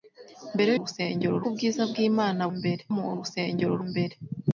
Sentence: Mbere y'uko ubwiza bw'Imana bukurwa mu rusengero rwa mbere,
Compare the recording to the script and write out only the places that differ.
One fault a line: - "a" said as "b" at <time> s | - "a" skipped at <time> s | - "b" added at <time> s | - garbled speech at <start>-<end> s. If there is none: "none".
- "y'uko" said as "rusengero" at 0.8 s
- "bukurwa" said as "mbere" at 2.5 s
- "rwa" skipped at 3.7 s